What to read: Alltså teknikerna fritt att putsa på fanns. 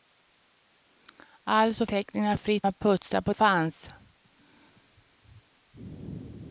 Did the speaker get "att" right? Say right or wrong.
right